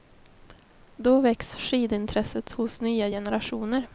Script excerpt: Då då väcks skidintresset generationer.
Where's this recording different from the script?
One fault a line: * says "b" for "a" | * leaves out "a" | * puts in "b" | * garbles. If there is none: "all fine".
* leaves out "då"
* puts in "hos nya"